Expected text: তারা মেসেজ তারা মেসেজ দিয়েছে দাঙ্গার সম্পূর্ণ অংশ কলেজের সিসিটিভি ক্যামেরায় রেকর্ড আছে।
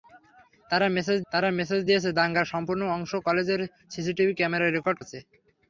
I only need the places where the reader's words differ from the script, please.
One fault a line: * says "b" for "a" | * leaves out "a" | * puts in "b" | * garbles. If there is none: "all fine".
all fine